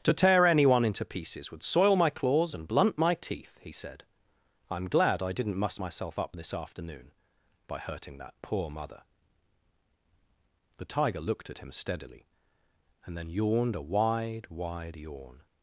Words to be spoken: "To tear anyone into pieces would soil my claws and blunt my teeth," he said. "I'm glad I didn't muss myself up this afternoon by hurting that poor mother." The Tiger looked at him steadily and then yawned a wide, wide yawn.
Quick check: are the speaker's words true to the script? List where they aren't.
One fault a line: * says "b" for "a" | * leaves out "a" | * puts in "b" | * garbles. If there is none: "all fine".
all fine